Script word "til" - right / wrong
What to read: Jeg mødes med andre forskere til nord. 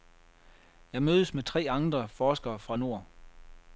wrong